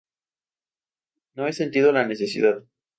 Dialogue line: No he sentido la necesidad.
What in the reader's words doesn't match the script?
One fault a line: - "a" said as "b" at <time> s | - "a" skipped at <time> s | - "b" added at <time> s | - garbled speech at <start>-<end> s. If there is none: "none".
none